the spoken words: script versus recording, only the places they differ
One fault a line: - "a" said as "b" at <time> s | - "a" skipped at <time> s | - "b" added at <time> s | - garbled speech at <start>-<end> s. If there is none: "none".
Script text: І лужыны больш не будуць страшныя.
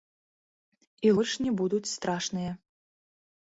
- "лужыны" skipped at 1.1 s